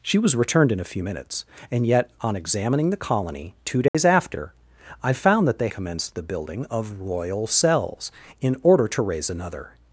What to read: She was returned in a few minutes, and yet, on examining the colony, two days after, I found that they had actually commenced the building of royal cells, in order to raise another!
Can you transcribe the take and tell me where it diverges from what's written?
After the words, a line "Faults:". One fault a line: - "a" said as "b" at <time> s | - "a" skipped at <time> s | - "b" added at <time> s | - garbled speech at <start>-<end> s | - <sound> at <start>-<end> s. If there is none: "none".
She was returned in a few minutes, and yet, on examining the colony, two days after, I found that they commenced the building of royal cells, in order to raise another!
Faults:
- dropout at 3.9-3.9 s
- "had actually" skipped at 5.7 s